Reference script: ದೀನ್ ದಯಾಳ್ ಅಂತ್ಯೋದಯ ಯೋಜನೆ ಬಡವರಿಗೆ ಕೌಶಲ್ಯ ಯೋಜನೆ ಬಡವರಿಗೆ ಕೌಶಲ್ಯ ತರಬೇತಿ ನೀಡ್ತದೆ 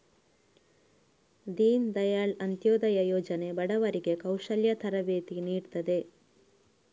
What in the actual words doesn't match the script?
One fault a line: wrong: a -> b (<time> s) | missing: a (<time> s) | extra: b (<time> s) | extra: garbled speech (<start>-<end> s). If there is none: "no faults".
missing: ಯೋಜನೆ ಬಡವರಿಗೆ ಕೌಶಲ್ಯ (4.7 s)